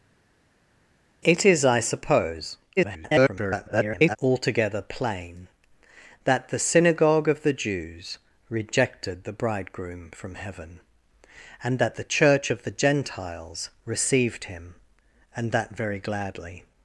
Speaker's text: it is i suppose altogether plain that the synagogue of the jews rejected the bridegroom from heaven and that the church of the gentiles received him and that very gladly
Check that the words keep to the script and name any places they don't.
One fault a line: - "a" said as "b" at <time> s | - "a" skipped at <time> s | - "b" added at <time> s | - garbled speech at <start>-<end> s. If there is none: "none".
- garbled speech at 2.8-4.2 s